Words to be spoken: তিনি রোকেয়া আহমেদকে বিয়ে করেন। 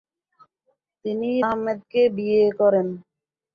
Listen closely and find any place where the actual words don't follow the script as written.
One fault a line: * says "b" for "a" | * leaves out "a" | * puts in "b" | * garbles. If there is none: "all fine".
* leaves out "রোকেয়া"